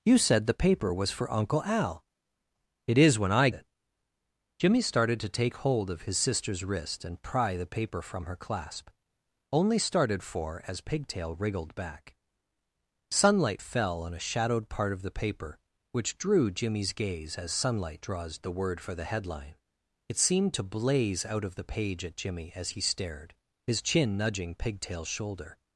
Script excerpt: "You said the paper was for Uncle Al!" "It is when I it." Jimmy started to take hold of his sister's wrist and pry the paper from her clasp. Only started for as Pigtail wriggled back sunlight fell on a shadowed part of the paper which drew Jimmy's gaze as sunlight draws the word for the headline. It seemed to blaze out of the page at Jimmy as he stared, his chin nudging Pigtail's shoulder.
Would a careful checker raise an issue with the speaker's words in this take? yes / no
no